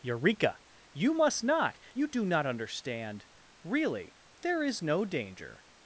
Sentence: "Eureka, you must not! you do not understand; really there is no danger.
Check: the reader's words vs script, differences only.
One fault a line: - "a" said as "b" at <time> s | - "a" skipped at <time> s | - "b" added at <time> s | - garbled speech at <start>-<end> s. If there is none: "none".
none